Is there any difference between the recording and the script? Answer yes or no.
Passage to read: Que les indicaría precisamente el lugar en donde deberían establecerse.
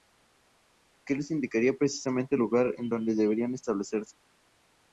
no